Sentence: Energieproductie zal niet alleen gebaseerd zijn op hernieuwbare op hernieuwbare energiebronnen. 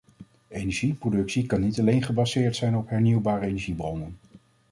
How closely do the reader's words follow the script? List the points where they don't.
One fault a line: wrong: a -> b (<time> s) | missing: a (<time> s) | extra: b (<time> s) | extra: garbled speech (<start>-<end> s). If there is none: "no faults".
wrong: zal -> kan (1.4 s)
missing: op hernieuwbare (3.5 s)